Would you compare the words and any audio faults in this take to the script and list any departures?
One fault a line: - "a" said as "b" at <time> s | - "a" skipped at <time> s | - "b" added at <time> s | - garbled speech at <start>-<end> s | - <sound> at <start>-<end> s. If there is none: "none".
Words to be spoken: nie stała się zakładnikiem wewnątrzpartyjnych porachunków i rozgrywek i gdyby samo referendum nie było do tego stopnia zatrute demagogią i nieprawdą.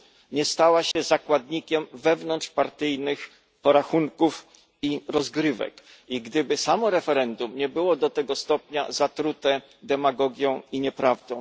- dropout at 0.9-1.0 s